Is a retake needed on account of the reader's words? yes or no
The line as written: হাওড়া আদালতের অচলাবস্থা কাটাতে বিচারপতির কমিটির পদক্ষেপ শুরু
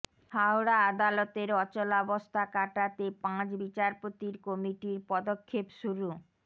yes